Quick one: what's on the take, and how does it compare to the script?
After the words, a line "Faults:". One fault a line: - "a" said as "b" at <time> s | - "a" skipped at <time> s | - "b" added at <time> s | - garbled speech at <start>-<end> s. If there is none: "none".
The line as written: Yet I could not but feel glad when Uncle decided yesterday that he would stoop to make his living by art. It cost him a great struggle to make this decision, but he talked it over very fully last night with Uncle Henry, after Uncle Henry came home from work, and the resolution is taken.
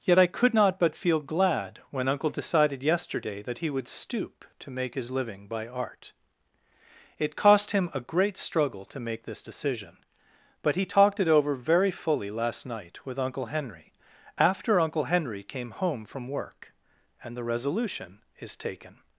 Yet I could not but feel glad when Uncle decided yesterday that he would stoop to make his living by art. It cost him a great struggle to make this decision, but he talked it over very fully last night with Uncle Henry, after Uncle Henry came home from work, and the resolution is taken.
Faults:
none